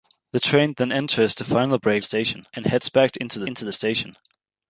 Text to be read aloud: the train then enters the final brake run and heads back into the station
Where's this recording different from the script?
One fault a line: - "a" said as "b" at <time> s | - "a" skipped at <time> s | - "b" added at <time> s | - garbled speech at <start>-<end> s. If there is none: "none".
- "run" said as "station" at 2.0 s
- "into the" added at 3.4 s